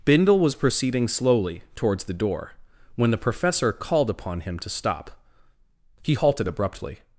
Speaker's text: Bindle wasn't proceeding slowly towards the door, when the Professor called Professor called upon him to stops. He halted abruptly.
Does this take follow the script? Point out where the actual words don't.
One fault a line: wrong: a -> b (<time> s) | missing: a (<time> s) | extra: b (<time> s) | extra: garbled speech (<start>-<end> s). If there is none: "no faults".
wrong: wasn't -> was (0.4 s)
missing: Professor called (4.1 s)
wrong: stops -> stop (4.7 s)